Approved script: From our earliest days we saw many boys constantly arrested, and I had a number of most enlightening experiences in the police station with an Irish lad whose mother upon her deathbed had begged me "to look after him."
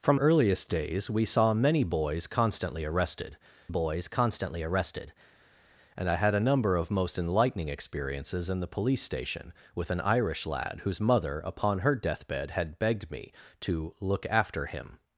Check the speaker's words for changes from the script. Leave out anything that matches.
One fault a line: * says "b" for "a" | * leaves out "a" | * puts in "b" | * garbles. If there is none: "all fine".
* leaves out "our"
* puts in "boys constantly arrested"